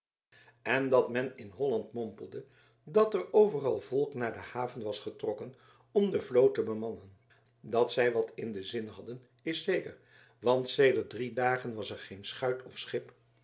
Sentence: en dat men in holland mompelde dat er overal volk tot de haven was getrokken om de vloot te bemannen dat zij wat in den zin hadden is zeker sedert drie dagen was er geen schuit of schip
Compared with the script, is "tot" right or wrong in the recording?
wrong